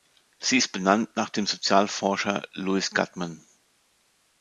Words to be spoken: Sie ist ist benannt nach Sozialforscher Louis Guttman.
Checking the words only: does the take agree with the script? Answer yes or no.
no